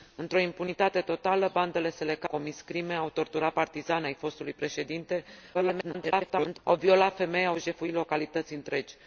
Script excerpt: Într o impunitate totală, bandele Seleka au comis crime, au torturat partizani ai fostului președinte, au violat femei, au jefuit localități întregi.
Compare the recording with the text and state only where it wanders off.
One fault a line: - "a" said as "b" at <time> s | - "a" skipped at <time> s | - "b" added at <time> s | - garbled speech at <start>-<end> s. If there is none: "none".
- "au" skipped at 2.3 s
- garbled speech at 5.5-6.6 s